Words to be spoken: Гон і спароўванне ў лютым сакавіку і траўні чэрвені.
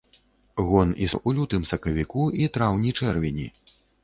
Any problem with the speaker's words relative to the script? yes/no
yes